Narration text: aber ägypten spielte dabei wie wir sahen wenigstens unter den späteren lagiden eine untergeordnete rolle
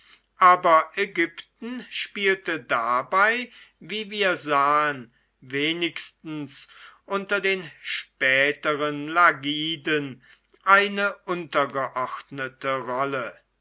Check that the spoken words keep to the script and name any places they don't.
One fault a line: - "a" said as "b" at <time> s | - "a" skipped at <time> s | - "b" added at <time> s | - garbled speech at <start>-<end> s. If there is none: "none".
none